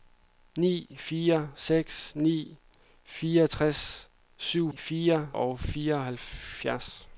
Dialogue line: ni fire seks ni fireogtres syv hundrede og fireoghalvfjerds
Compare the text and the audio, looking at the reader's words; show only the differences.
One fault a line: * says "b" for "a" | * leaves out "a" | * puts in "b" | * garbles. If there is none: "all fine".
* says "fire" for "hundrede"